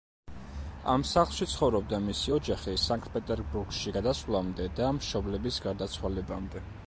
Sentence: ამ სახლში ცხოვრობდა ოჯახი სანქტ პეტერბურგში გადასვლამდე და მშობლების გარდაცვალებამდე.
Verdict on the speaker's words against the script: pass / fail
fail